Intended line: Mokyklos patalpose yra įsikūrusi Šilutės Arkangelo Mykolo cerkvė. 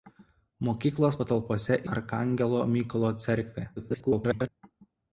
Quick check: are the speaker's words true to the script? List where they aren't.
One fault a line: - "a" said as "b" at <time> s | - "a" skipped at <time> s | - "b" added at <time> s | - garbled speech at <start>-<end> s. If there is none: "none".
- "yra įsikūrusi Šilutės" skipped at 1.8 s
- garbled speech at 3.8-4.5 s